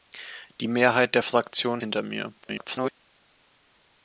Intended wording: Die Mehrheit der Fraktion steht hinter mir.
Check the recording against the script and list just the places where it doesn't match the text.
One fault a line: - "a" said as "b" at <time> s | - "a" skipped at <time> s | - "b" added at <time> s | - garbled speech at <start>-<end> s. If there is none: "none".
- "steht" skipped at 1.8 s
- garbled speech at 2.4-2.9 s